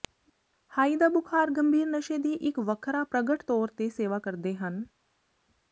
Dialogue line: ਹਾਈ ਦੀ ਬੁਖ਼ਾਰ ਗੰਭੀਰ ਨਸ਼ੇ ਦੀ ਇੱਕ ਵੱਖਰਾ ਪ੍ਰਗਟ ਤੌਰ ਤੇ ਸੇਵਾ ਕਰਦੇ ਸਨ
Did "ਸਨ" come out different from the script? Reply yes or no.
yes